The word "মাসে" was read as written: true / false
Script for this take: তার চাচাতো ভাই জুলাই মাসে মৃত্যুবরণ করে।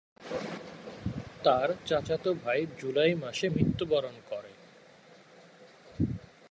true